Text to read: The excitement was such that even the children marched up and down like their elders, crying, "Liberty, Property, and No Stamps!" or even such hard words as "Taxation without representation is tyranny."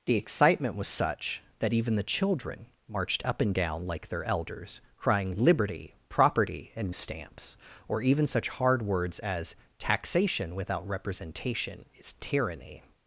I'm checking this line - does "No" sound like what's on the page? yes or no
no